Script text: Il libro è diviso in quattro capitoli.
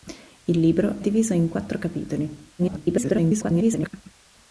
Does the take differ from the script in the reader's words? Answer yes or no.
yes